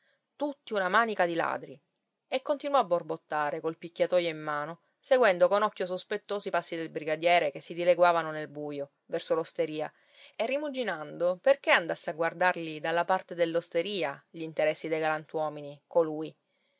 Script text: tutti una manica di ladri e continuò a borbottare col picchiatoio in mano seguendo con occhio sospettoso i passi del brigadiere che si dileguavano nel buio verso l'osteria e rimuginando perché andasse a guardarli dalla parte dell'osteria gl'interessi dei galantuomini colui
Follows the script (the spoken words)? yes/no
yes